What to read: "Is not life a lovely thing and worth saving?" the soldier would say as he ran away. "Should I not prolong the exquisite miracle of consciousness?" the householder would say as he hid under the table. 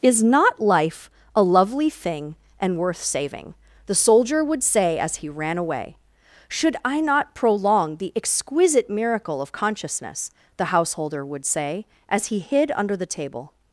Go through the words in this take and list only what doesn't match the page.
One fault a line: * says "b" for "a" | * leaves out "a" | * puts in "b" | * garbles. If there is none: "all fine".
all fine